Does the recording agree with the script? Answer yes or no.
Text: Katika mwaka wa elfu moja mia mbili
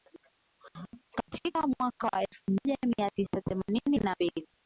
no